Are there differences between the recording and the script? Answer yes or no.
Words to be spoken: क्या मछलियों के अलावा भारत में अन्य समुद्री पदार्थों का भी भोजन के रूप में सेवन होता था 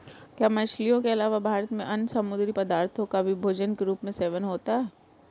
yes